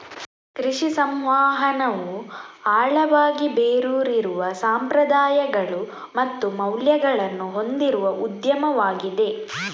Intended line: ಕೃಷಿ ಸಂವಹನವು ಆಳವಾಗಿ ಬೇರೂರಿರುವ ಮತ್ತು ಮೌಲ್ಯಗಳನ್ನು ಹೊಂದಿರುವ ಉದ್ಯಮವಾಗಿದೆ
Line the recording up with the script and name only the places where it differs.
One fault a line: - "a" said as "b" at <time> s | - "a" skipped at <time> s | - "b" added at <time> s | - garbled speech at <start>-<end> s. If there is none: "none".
- "ಸಂಪ್ರದಾಯಗಳು" added at 4.6 s